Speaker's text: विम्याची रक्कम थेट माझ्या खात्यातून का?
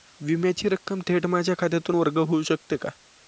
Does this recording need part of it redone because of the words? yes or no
yes